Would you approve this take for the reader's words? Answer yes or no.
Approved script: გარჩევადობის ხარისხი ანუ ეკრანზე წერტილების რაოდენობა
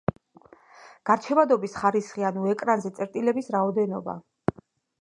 yes